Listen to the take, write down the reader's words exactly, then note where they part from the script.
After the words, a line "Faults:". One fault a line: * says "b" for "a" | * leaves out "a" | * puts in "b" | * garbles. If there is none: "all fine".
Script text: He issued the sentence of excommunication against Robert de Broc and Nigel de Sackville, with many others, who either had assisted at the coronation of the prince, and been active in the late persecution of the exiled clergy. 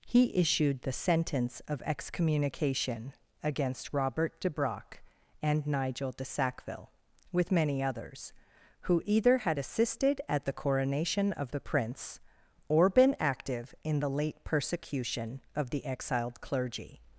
He issued the sentence of excommunication against Robert de Broc and Nigel de Sackville, with many others, who either had assisted at the coronation of the prince, or been active in the late persecution of the exiled clergy.
Faults:
* says "or" for "and"